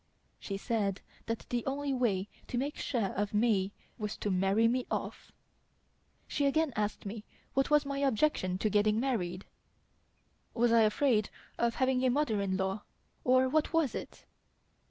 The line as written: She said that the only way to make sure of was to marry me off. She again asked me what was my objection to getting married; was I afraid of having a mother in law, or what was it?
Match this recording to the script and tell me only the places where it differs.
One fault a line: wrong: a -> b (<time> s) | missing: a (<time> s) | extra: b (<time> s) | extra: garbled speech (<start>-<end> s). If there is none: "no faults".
extra: me (3.4 s)